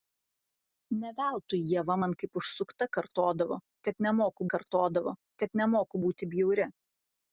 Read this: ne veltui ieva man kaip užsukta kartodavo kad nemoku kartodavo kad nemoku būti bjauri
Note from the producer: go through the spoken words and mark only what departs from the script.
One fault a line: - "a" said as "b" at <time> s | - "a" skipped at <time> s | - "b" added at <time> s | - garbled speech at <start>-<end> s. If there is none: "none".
none